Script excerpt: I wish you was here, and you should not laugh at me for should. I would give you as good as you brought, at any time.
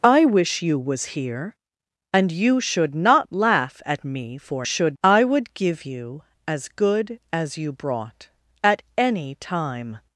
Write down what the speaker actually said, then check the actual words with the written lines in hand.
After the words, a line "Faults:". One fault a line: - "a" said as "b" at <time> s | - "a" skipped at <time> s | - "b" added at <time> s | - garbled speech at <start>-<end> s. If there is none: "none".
I wish you was here, and you should not laugh at me for should. I would give you as good as you brought, at any time.
Faults:
none